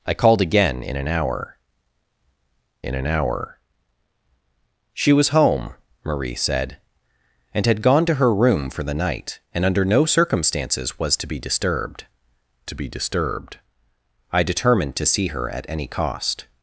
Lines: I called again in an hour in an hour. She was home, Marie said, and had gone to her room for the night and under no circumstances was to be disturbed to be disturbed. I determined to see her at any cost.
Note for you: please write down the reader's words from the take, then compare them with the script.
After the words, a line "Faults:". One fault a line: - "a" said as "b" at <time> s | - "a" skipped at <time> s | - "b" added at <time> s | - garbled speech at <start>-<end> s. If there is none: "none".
I called again in an hour in an hour. She was home, Marie said, and had gone to her room for the night and under no circumstances was to be disturbed to be disturbed. I determined to see her at any cost.
Faults:
none